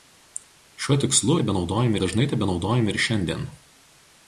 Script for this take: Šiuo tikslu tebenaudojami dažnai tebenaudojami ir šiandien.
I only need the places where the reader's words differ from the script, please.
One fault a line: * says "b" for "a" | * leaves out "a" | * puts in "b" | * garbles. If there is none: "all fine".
all fine